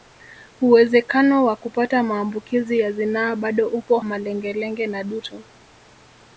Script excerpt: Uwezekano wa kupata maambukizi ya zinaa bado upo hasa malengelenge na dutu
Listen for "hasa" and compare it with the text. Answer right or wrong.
wrong